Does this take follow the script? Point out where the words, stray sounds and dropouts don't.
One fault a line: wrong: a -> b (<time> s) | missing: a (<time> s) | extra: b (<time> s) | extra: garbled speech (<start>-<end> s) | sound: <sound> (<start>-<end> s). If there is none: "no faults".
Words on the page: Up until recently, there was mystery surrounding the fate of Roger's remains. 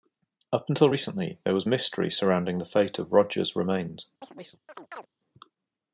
sound: chirp (4.2-5.1 s)